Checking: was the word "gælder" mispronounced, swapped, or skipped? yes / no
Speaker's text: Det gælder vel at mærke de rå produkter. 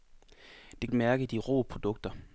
yes